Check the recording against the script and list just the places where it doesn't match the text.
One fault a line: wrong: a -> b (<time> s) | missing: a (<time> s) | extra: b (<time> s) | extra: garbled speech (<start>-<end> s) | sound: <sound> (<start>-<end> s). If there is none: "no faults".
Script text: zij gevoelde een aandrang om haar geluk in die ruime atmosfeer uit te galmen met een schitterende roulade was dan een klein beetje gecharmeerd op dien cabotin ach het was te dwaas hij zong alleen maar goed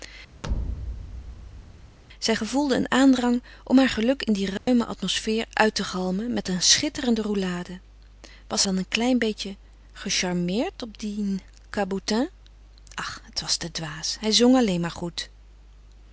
sound: thud (0.4-2.0 s)
sound: dropout (4.6-4.7 s)